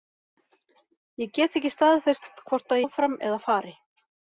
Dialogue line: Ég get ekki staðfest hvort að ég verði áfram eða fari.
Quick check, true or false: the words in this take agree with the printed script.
false